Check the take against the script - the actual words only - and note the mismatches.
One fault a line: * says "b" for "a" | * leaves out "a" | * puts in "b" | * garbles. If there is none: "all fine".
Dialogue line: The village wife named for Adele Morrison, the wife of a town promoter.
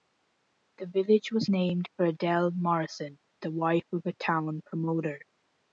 * says "was" for "wife"